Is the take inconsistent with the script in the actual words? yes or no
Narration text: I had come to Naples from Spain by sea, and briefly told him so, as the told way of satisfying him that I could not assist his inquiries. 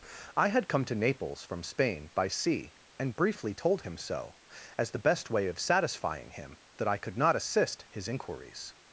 yes